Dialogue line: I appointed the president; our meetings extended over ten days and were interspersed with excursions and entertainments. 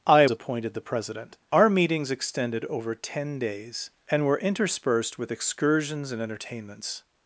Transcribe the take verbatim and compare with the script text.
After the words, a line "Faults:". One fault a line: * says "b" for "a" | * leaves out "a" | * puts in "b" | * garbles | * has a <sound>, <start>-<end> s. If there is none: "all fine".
I appointed the president; our meetings extended over ten days and were interspersed with excursions and entertainments.
Faults:
all fine